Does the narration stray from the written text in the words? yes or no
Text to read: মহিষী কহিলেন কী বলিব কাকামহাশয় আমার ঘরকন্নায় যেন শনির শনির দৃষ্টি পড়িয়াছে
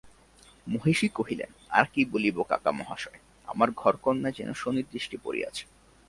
yes